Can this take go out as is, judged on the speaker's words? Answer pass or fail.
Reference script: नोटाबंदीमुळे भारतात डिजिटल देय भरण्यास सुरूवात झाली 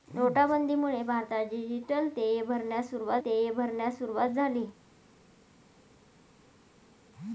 fail